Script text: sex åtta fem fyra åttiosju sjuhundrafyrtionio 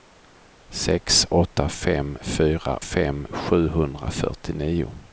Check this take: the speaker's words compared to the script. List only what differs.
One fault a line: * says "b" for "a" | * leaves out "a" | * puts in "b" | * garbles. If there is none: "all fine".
* says "fem" for "åttiosju"